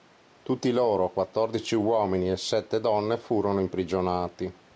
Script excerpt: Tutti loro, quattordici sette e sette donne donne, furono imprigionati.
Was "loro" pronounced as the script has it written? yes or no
yes